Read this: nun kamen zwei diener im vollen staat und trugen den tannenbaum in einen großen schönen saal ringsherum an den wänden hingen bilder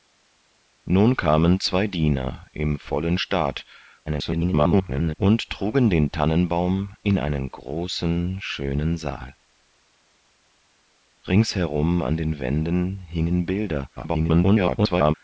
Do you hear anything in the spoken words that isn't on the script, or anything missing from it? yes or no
yes